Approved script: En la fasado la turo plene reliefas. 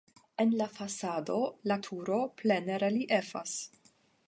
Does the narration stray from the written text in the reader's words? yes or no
no